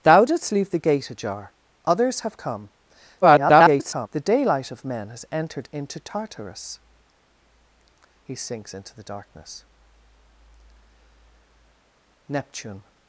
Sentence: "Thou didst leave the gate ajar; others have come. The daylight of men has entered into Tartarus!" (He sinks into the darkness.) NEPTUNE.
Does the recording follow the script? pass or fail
fail